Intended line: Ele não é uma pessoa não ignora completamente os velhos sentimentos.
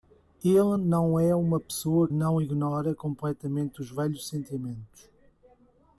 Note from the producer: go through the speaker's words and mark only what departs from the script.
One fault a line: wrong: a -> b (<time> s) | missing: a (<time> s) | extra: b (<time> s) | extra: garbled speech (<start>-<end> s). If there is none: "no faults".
no faults